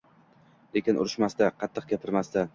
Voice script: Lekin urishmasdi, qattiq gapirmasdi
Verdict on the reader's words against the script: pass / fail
pass